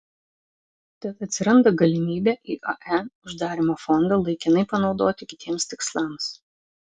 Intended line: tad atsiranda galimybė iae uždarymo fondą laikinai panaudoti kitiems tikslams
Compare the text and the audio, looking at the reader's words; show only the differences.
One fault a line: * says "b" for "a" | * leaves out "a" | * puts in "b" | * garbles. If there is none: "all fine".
all fine